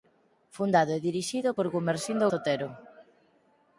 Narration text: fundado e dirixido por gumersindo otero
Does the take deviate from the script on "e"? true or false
false